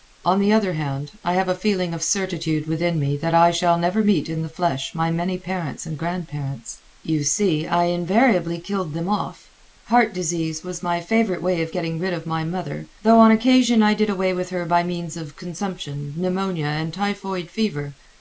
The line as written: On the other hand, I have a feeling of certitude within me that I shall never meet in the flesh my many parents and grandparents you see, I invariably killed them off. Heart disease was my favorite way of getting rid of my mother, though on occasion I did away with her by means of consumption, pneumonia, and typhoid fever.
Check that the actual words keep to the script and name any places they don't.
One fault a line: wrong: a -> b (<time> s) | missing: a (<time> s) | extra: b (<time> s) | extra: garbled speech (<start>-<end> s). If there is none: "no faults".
no faults